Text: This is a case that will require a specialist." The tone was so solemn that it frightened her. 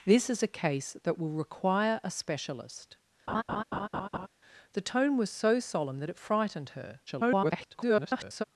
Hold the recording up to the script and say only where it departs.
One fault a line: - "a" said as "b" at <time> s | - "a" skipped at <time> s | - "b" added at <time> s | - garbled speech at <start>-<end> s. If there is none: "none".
- garbled speech at 7.1-8.4 s